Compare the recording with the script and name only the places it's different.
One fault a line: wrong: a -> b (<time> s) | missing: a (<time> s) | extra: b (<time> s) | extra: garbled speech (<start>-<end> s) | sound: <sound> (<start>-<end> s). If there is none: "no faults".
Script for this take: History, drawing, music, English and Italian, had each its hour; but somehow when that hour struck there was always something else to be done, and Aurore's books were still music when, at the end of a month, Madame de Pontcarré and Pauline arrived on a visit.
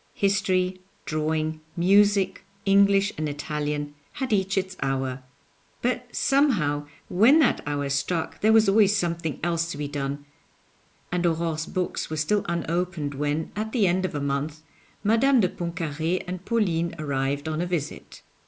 wrong: music -> unopened (12.5 s)